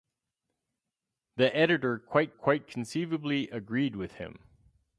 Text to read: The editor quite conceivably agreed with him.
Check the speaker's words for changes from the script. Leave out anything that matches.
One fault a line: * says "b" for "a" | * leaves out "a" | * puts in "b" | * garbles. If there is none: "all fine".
* puts in "quite"